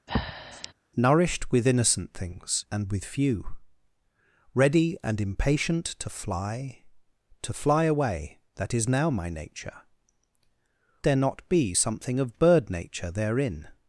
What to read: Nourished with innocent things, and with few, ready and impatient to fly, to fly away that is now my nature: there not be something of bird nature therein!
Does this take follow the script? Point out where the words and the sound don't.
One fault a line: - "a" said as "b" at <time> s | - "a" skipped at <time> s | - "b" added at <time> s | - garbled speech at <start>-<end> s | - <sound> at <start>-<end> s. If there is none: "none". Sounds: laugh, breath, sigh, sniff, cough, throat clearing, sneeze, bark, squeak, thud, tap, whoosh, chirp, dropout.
- breath at 0.1-0.7 s